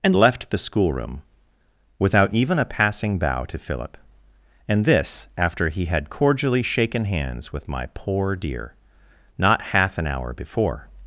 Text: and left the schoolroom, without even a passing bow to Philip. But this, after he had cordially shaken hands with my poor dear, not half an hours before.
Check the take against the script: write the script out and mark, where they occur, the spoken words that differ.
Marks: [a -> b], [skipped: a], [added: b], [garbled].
and left the schoolroom, without even a passing bow to Philip. [But -> And] this, after he had cordially shaken hands with my poor dear, not half an [hours -> hour] before.